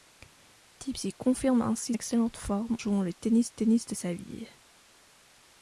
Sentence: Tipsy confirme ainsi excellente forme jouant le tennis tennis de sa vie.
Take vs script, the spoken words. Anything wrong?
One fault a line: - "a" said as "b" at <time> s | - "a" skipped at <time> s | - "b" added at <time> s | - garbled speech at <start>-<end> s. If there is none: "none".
none